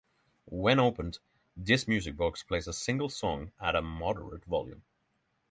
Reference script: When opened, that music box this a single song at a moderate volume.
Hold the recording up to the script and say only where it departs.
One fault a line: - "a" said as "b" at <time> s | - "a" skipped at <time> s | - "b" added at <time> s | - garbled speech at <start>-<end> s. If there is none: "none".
- "that" said as "this" at 1.6 s
- "this" said as "plays" at 2.4 s